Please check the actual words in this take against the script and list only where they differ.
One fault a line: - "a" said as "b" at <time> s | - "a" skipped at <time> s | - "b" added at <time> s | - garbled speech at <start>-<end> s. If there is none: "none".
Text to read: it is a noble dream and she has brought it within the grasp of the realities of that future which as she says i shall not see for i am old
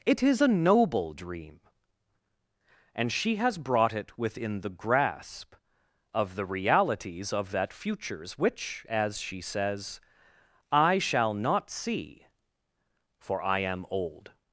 - "future" said as "futures" at 7.7 s